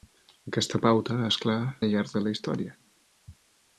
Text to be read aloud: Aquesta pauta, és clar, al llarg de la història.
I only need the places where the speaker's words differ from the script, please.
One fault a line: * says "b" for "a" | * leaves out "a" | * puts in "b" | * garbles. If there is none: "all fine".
all fine